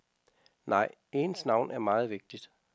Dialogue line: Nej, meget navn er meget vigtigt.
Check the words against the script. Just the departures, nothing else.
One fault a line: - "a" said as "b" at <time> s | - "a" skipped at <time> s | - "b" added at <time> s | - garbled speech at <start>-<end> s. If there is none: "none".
- "meget" said as "ens" at 1.1 s